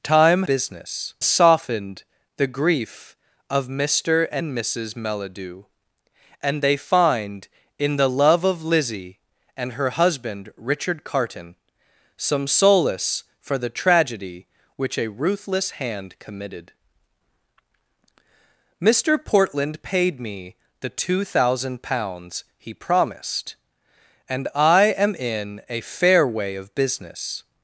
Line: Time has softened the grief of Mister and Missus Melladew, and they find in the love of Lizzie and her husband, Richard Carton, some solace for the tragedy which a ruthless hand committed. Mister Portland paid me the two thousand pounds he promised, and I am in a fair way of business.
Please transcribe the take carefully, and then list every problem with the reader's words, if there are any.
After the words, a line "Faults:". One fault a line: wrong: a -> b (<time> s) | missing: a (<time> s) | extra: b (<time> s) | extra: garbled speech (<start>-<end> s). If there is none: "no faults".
Time business softened the grief of Mister and Missus Melladew, and they find in the love of Lizzie and her husband, Richard Carton, some solace for the tragedy which a ruthless hand committed. Mister Portland paid me the two thousand pounds he promised, and I am in a fair way of business.
Faults:
wrong: has -> business (0.4 s)